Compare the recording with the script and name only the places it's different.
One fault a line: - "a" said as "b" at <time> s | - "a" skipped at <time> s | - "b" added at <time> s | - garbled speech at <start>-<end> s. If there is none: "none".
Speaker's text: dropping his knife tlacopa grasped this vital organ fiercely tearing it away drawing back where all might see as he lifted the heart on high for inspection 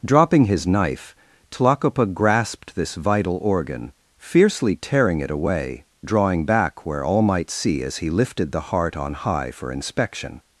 none